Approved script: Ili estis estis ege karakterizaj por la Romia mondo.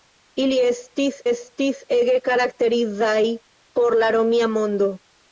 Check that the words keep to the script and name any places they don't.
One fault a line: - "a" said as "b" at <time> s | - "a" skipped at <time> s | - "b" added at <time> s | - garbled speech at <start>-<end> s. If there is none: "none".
none